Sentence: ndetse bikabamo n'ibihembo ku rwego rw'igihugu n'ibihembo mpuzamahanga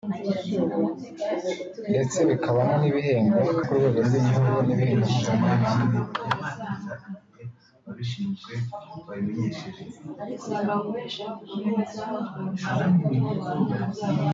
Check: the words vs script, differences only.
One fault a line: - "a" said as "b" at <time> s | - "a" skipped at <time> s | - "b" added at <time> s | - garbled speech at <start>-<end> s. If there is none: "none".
none